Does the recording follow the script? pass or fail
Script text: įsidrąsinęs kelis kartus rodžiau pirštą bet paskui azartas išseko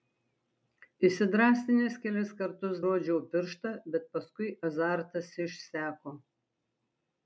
pass